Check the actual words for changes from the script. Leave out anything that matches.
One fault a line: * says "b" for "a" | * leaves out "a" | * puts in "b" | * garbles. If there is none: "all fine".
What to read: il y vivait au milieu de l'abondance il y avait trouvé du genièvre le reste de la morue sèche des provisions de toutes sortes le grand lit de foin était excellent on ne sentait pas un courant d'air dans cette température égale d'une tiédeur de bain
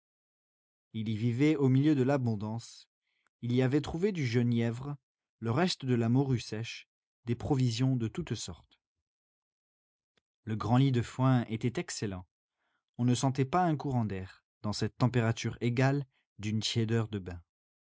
all fine